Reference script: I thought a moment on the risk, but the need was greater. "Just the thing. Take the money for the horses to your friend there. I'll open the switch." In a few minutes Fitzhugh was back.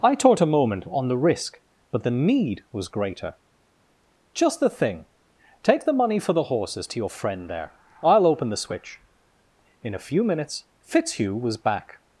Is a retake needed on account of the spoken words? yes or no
yes